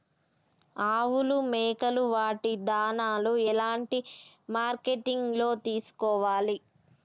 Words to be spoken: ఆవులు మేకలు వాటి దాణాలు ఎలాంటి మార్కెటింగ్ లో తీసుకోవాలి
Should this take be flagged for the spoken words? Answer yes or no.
no